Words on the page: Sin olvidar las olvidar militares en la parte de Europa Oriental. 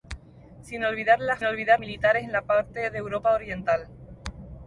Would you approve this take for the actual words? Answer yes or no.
yes